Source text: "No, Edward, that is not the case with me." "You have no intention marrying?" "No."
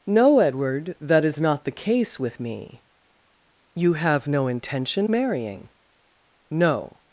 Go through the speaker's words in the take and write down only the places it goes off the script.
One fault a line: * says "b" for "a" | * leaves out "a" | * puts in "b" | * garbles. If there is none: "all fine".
all fine